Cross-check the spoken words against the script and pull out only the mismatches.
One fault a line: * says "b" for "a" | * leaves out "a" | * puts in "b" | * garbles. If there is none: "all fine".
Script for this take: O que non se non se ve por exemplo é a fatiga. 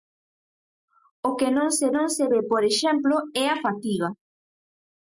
all fine